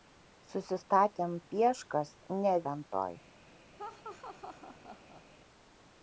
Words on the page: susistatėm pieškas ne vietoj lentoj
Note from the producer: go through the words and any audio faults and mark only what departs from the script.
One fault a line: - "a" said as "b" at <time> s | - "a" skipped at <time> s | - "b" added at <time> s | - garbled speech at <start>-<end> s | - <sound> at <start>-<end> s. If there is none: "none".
- "vietoj" skipped at 2.5 s
- laugh at 3.8-5.2 s